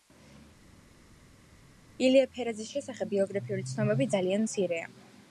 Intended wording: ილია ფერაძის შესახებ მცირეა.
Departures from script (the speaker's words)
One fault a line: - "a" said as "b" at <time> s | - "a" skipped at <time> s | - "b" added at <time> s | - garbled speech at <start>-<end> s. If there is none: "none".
- "ბიოგრაფიული ცნობები ძალიან" added at 3.1 s